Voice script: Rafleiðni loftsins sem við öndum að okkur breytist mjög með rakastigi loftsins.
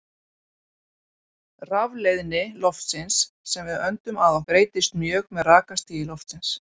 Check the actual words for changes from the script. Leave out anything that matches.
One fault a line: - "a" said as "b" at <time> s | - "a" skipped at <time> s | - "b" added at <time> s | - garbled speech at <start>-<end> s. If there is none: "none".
- "okkur" skipped at 4.4 s